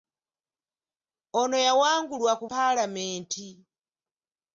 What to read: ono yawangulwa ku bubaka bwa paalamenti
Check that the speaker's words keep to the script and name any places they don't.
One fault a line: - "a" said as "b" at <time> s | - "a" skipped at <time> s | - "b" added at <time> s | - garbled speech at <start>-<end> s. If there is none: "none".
- "bubaka bwa" skipped at 2.4 s